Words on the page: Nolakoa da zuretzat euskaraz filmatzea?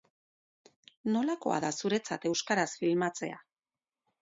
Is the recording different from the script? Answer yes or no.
no